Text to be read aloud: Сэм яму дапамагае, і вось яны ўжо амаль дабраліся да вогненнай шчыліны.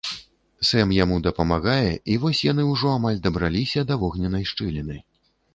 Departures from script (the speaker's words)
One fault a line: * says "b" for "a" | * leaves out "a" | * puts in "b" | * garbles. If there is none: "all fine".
all fine